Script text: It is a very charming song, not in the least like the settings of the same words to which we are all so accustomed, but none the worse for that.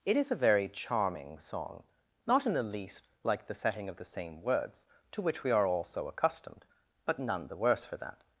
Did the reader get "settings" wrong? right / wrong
wrong